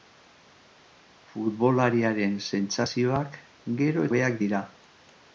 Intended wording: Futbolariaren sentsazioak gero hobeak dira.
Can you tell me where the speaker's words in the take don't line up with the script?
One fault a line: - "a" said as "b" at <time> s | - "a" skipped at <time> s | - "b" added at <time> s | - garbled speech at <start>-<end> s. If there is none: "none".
none